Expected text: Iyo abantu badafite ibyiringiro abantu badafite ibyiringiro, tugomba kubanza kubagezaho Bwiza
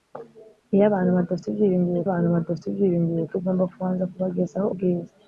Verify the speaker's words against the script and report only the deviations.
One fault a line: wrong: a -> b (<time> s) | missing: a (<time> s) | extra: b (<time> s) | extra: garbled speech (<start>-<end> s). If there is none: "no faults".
no faults